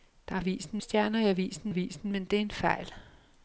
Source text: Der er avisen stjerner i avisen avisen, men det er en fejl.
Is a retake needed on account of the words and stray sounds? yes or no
no